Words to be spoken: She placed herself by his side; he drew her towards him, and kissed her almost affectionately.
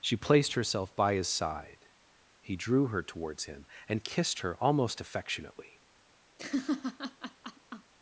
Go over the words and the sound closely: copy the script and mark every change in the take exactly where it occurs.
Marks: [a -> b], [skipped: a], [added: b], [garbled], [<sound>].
She placed herself by his side; he drew her towards him, and kissed her almost affectionately. [laugh]